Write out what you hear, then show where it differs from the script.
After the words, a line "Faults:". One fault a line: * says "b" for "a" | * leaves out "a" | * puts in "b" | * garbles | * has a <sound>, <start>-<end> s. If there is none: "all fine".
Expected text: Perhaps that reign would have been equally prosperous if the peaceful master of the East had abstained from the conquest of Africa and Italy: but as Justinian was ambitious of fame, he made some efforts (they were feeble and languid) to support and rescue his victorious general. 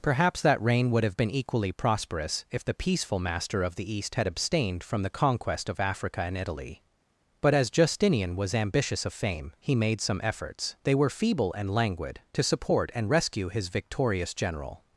Perhaps that reign would have been equally prosperous if the peaceful master of the East had abstained from the conquest of Africa and Italy: but as Justinian was ambitious of fame, he made some efforts (they were feeble and languid) to support and rescue his victorious general.
Faults:
all fine